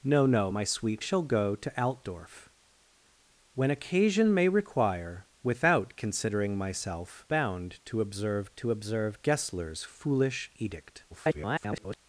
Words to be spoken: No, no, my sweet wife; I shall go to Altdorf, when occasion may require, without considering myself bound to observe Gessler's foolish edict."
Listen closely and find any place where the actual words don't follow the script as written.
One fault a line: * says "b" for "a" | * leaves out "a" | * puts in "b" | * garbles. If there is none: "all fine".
* leaves out "wife I"
* puts in "to observe"
* garbles